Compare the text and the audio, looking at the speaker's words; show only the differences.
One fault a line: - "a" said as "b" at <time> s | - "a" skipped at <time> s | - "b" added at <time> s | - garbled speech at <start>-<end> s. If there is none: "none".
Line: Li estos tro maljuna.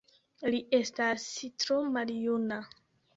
- "estos" said as "estas" at 0.8 s